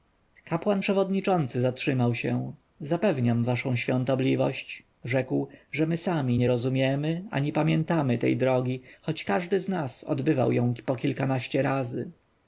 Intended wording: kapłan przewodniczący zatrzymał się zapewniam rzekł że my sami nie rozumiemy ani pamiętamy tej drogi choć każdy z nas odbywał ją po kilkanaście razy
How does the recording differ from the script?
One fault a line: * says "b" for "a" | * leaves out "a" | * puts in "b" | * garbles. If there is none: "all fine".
* puts in "waszą świątobliwość"